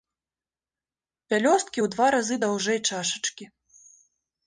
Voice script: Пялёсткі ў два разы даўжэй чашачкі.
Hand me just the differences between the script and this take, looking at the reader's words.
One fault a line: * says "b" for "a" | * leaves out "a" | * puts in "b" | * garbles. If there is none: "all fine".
all fine